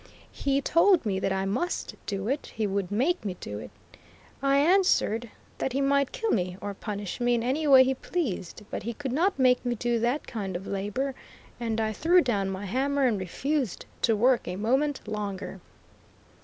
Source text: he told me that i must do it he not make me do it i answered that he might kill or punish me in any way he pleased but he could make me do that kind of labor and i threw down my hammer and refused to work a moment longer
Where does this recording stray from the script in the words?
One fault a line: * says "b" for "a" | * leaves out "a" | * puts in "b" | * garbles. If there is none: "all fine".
* says "would" for "not"
* puts in "me"
* puts in "not"